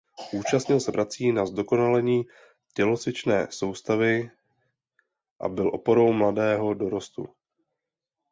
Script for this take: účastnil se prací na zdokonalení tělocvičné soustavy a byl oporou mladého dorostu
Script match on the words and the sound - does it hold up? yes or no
yes